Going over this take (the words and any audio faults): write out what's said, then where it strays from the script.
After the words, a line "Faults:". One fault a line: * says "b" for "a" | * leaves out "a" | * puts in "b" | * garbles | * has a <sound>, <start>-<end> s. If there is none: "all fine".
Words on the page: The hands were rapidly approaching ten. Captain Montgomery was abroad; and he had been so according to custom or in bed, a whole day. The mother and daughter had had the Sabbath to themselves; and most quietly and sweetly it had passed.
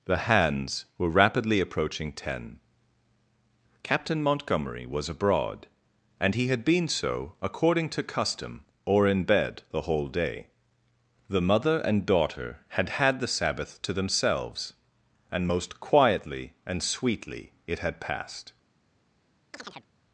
The hands were rapidly approaching ten. Captain Montgomery was abroad; and he had been so according to custom or in bed, the whole day. The mother and daughter had had the Sabbath to themselves; and most quietly and sweetly it had passed.
Faults:
* says "the" for "a"
* has a chirp, 19.5-19.9 s